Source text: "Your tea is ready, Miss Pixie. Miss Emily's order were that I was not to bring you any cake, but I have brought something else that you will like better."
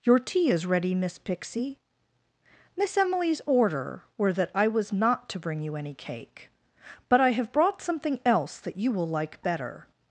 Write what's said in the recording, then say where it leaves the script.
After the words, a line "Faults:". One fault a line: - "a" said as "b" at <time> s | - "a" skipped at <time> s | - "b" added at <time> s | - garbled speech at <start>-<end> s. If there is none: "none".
"Your tea is ready, Miss Pixie. Miss Emily's order were that I was not to bring you any cake, but I have brought something else that you will like better."
Faults:
none